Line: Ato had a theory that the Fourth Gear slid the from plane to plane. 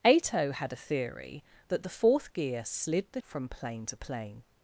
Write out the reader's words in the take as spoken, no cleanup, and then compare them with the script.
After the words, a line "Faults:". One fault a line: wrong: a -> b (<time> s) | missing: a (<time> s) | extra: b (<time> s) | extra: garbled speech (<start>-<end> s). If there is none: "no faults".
Ato had a theory that the Fourth Gear slid the from plane to plane.
Faults:
no faults